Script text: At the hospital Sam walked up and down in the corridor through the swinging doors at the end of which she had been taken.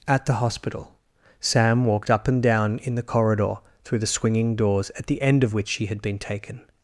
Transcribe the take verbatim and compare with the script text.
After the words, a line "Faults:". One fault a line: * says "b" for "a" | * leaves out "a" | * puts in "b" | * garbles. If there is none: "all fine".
At the hospital Sam walked up and down in the corridor through the swinging doors at the end of which she had been taken.
Faults:
all fine